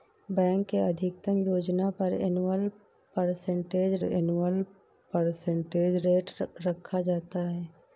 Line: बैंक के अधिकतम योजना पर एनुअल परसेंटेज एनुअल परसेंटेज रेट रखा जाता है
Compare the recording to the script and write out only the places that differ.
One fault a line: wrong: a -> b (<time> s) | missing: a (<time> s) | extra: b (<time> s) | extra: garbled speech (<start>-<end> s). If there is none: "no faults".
no faults